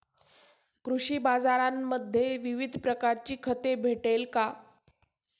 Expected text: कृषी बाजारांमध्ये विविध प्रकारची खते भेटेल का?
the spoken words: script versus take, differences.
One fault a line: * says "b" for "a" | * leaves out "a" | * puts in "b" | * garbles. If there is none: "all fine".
all fine